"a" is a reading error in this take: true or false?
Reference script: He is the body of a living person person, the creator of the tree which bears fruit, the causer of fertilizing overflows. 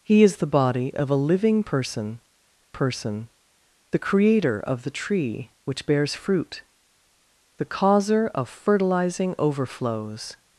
false